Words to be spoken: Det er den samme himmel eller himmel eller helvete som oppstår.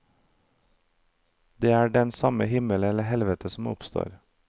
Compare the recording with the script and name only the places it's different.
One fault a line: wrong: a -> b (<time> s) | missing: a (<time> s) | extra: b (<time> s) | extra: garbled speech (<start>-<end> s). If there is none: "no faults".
missing: himmel eller (3.0 s)